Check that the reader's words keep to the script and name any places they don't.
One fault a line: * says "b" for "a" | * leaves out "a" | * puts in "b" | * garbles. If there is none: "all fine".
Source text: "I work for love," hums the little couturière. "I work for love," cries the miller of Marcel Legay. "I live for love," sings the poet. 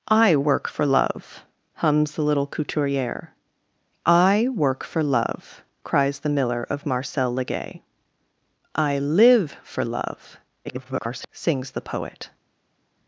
* garbles